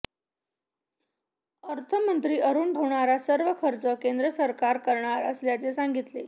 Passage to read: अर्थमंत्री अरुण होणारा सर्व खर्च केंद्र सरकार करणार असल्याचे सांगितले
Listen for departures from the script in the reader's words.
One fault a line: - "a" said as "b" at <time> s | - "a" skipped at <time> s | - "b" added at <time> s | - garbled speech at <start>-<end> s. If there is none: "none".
none